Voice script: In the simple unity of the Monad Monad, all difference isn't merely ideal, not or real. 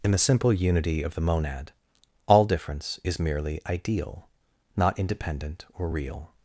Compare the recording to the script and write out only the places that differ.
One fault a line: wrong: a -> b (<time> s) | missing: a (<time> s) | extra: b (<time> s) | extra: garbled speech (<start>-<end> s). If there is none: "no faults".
missing: Monad (1.7 s)
wrong: isn't -> is (3.0 s)
extra: independent (5.0 s)